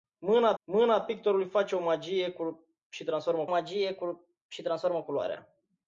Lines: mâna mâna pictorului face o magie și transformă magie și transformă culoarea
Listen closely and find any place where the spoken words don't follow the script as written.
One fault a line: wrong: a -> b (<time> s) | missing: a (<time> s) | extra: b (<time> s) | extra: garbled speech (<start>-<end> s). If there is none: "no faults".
no faults